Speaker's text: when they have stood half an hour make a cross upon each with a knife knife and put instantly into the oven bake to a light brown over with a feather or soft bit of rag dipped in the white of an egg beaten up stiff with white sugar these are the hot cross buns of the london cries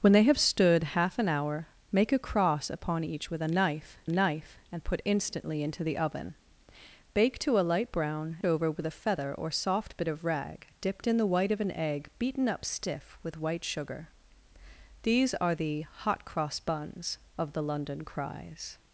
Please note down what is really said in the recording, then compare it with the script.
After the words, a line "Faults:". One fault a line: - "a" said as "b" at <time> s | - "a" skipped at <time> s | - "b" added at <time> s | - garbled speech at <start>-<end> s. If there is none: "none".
when they have stood half an hour make a cross upon each with a knife knife and put instantly into the oven bake to a light brown over with a feather or soft bit of rag dipped in the white of an egg beaten up stiff with white sugar these are the hot cross buns of the london cries
Faults:
none